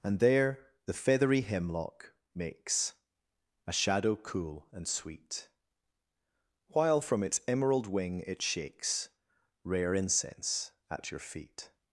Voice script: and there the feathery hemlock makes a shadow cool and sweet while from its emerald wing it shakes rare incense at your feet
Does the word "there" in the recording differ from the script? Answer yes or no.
no